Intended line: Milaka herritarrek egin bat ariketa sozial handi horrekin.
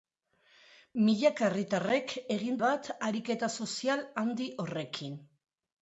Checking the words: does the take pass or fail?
pass